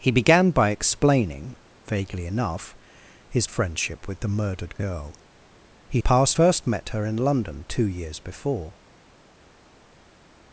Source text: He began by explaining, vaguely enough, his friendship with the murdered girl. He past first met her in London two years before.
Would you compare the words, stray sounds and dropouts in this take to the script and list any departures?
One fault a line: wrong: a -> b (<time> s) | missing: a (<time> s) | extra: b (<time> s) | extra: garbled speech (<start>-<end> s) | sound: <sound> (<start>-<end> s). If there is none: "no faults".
no faults